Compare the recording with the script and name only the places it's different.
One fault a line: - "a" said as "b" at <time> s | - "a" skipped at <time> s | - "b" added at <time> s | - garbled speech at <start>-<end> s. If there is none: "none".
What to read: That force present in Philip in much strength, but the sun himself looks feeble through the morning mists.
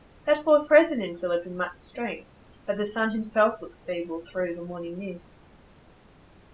none